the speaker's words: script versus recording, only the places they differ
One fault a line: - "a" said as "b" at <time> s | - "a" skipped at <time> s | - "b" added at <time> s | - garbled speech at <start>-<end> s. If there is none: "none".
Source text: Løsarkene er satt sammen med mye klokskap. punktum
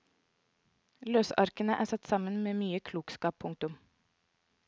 none